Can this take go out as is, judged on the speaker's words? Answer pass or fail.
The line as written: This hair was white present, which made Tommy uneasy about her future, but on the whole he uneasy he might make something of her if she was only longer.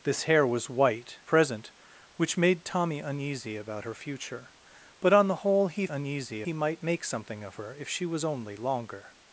pass